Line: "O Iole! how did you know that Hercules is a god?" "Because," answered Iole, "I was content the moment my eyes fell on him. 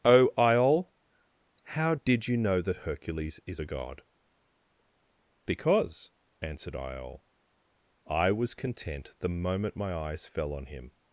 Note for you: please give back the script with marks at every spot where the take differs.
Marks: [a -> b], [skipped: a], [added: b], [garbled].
"O Iole! how did you know that Hercules is a god?" "Because," answered Iole, "I was content the moment my eyes fell on him.